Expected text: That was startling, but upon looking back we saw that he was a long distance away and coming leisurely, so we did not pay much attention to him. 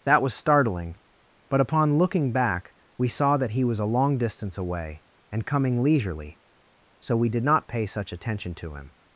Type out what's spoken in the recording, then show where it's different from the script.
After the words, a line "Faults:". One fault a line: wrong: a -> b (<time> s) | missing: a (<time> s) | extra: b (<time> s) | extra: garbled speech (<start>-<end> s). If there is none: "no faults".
That was startling, but upon looking back we saw that he was a long distance away and coming leisurely, so we did not pay such attention to him.
Faults:
wrong: much -> such (7.8 s)